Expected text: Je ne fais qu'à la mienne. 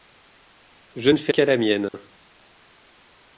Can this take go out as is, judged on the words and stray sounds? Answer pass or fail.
fail